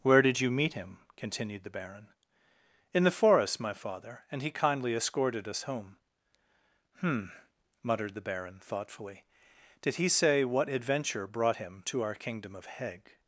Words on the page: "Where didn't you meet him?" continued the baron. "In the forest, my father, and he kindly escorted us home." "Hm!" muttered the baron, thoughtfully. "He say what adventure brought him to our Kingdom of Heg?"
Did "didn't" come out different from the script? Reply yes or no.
yes